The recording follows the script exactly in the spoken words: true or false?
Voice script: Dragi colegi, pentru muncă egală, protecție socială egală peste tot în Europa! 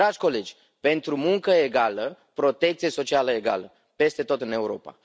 true